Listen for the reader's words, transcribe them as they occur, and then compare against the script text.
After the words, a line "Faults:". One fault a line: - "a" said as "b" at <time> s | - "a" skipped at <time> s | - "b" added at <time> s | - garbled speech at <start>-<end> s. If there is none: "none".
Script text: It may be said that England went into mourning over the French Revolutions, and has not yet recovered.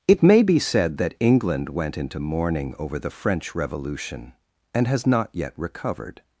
It may be said that England went into mourning over the French Revolution, and has not yet recovered.
Faults:
- "Revolutions" said as "Revolution" at 3.5 s